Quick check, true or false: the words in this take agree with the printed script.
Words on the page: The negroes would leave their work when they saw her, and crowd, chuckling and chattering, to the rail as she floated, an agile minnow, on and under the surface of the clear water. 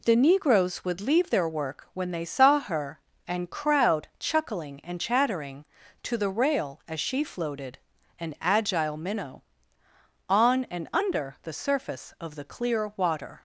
true